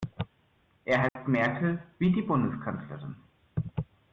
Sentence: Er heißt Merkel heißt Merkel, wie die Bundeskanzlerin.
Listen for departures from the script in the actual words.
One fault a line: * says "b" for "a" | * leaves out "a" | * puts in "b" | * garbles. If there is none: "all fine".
* leaves out "heißt Merkel"